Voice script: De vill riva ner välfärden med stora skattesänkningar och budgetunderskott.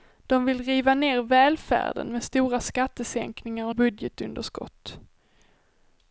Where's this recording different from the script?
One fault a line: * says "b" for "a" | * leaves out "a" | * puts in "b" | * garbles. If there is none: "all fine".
all fine